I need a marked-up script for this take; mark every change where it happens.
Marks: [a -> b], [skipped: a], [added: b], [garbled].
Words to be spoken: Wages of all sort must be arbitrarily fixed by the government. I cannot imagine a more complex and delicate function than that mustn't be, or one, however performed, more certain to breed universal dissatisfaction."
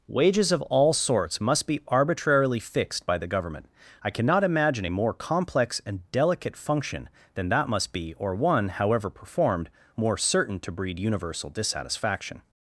Wages of all [sort -> sorts] must be arbitrarily fixed by the government. I cannot imagine a more complex and delicate function than that [mustn't -> must] be, or one, however performed, more certain to breed universal dissatisfaction."